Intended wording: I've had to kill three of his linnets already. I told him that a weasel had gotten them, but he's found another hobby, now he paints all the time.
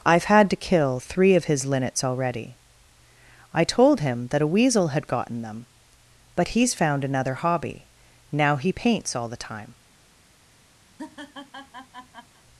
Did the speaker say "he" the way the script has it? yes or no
yes